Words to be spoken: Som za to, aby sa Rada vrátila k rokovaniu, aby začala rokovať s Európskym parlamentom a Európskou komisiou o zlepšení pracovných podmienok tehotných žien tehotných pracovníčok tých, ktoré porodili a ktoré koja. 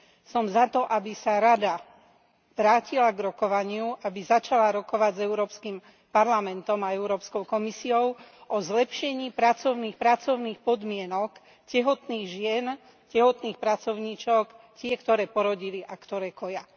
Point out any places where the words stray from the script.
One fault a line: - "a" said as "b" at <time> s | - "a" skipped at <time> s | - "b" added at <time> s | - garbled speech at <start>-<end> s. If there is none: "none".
- "pracovných" added at 9.9 s